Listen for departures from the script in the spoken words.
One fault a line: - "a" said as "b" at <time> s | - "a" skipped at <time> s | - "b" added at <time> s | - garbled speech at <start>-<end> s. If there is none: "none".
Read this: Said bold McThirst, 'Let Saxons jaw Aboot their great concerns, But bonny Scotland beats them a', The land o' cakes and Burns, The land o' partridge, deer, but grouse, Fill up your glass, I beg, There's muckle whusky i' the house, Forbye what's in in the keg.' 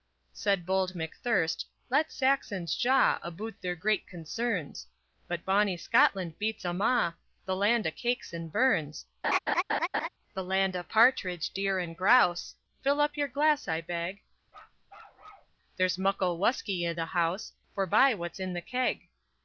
- "but" said as "and" at 11.8 s
- "in" skipped at 18.5 s